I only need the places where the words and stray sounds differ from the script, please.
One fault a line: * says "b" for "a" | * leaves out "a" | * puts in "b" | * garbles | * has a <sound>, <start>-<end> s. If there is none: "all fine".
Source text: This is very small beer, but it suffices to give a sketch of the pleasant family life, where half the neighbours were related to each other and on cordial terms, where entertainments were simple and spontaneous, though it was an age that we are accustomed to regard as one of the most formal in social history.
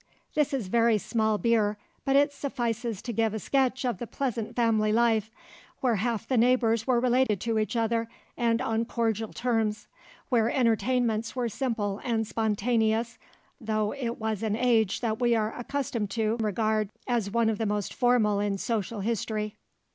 * has a dropout, 7.3-7.3 s